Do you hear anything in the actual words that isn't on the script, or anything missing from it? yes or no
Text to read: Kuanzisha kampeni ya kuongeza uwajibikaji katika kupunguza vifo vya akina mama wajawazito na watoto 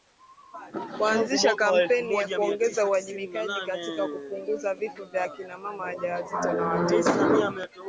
no